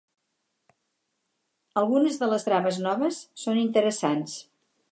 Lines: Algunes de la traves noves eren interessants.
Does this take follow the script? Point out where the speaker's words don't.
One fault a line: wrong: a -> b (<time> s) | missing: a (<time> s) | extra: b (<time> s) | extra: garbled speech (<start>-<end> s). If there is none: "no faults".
wrong: la -> les (2.3 s)
wrong: eren -> són (3.5 s)